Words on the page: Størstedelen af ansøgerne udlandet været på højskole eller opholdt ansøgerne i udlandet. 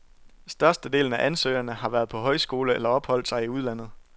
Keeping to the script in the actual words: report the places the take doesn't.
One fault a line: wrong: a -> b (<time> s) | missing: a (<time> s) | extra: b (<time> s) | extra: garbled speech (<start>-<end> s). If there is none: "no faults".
wrong: udlandet -> har (1.7 s)
wrong: ansøgerne -> sig (3.3 s)